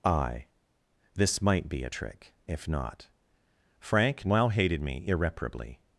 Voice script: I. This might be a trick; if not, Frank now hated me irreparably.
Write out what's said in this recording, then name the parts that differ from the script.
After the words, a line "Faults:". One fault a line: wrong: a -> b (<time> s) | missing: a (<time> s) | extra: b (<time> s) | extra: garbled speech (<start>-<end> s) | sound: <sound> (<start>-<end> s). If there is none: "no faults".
I. This might be a trick; if not, Frank now hated me irreparably.
Faults:
no faults